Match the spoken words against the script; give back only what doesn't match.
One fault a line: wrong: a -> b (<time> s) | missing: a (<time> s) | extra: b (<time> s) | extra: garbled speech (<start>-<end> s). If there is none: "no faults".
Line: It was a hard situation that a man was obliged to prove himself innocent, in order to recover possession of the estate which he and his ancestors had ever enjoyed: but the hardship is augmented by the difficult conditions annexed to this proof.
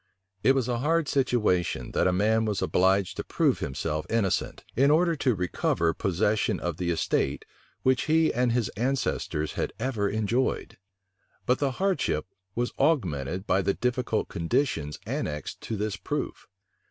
wrong: is -> was (12.5 s)